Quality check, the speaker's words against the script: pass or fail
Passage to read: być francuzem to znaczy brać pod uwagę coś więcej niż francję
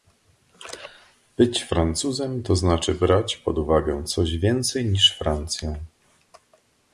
pass